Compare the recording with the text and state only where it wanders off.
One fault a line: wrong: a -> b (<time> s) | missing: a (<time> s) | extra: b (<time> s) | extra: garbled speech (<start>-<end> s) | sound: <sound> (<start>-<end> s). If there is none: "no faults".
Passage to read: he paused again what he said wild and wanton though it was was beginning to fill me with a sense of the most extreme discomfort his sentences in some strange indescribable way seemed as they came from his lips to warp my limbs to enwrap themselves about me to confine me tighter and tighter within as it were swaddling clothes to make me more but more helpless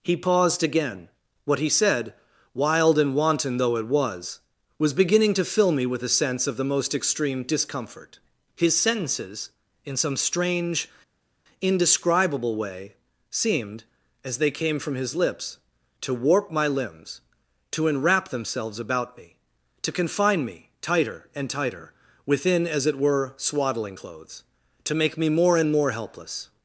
wrong: but -> and (25.6 s)